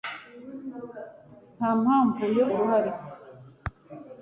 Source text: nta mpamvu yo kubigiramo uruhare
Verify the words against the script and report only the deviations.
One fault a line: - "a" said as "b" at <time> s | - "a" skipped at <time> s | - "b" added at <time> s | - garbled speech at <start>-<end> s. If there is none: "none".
- "kubigiramo" skipped at 2.5 s